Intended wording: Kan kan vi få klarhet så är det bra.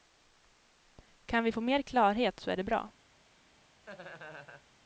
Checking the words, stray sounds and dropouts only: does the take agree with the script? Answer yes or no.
no